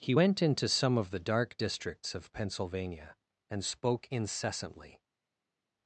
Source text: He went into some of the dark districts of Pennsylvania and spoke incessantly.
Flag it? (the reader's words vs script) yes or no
no